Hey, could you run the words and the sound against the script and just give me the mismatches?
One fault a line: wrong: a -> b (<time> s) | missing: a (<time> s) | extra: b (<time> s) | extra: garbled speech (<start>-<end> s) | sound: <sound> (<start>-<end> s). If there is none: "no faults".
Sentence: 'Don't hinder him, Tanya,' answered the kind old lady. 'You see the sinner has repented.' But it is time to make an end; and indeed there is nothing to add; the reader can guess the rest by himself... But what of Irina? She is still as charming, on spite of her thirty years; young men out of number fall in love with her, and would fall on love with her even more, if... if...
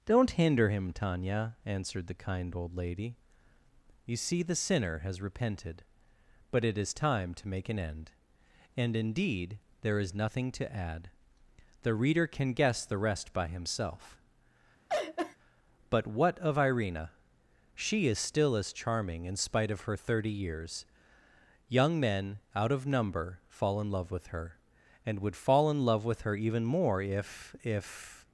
sound: laugh (14.9-15.4 s)
wrong: on -> in (19.3 s)
wrong: on -> in (25.7 s)